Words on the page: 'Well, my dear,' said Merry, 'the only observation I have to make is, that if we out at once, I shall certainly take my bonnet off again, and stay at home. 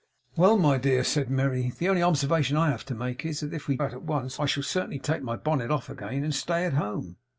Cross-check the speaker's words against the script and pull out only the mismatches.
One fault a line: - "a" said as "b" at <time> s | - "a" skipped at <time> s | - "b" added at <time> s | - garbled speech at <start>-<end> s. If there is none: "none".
none